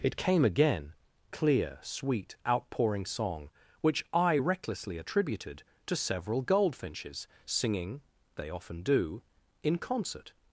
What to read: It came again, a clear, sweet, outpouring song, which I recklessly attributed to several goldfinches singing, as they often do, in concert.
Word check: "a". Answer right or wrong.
wrong